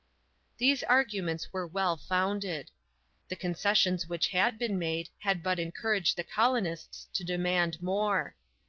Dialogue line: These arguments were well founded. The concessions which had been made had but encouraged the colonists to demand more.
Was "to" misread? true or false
false